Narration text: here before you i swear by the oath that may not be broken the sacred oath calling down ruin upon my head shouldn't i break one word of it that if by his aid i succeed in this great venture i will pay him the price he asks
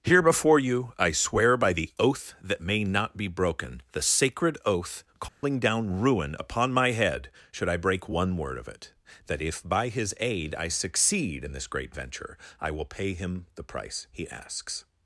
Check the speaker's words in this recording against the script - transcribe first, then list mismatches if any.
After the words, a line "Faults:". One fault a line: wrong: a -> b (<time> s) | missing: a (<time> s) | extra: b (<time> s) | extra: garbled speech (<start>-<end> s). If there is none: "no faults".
here before you i swear by the oath that may not be broken the sacred oath calling down ruin upon my head should i break one word of it that if by his aid i succeed in this great venture i will pay him the price he asks
Faults:
wrong: shouldn't -> should (7.5 s)